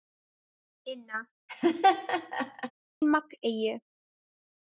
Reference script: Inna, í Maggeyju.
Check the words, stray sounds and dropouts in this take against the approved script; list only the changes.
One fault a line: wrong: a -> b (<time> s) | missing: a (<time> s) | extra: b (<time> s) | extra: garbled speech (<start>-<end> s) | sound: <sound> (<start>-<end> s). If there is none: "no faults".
sound: laugh (1.5-2.7 s)